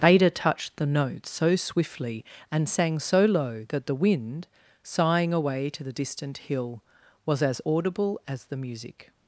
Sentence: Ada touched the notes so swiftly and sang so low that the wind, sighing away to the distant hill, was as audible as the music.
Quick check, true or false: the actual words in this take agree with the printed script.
true